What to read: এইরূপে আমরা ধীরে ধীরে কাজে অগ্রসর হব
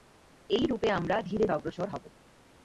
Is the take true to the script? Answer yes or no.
no